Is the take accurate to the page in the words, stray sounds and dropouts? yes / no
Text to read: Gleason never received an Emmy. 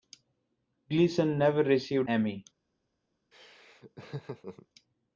no